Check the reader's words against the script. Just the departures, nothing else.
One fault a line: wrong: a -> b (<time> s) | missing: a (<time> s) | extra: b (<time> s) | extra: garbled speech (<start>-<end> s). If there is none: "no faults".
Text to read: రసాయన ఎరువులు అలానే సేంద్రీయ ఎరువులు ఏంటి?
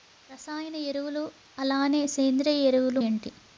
no faults